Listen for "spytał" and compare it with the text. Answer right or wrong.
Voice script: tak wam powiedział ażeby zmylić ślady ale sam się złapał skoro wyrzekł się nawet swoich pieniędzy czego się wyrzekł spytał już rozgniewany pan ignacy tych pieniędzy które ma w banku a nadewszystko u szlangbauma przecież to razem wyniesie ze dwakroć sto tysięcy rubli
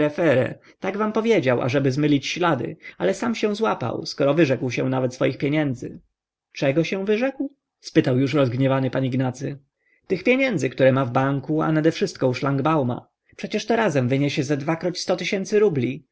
right